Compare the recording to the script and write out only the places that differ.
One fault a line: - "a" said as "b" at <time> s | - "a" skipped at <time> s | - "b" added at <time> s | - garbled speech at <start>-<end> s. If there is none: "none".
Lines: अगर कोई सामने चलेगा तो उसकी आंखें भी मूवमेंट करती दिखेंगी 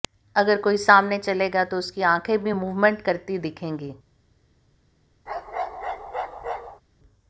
none